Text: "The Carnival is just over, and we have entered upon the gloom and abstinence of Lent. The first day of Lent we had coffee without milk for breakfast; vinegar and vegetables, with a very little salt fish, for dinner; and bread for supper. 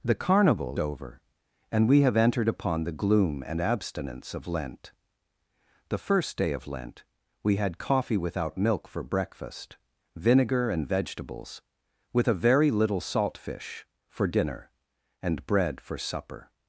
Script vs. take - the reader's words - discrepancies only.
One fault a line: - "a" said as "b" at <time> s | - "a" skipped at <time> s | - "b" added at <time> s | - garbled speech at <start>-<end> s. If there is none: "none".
- "is just" skipped at 0.8 s